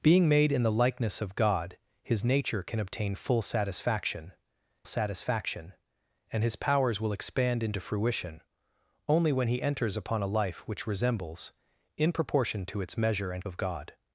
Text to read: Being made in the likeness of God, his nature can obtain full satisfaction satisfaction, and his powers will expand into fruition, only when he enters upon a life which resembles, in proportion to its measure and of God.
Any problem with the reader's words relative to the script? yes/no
no